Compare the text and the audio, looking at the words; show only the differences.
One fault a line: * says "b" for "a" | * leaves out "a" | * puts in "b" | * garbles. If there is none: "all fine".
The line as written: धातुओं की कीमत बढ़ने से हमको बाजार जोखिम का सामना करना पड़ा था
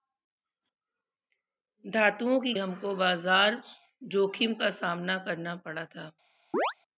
* leaves out "कीमत बढ़ने से"